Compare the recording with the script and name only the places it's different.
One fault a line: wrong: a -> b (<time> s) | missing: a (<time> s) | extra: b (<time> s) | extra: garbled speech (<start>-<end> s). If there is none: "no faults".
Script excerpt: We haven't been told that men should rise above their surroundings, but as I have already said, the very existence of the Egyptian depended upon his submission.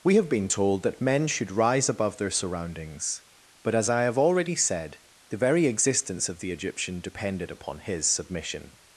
wrong: haven't -> have (0.1 s)